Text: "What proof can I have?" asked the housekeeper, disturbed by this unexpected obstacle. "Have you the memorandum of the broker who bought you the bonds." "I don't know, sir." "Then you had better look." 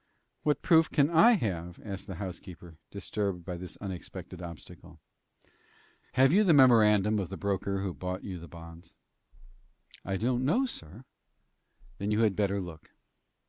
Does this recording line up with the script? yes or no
yes